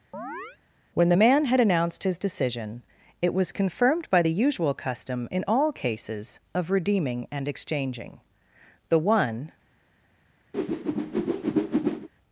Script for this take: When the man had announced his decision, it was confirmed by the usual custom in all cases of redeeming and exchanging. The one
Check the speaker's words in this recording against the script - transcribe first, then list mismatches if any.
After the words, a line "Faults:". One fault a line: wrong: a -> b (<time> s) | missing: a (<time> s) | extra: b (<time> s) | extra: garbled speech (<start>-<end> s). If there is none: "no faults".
When the man had announced his decision, it was confirmed by the usual custom in all cases of redeeming and exchanging. The one
Faults:
no faults